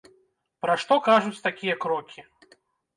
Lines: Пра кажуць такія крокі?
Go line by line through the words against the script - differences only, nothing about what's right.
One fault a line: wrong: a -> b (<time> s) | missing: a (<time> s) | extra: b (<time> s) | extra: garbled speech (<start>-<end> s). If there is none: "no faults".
extra: што (0.8 s)